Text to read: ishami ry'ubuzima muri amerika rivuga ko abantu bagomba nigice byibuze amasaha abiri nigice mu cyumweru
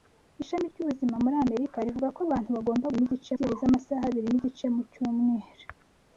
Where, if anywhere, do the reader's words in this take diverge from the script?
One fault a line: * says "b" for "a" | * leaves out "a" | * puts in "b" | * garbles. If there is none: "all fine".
all fine